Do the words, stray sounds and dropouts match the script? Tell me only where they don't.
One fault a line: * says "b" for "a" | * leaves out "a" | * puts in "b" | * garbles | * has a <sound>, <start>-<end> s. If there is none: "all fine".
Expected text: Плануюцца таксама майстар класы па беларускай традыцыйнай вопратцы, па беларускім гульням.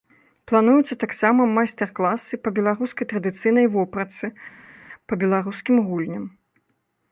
all fine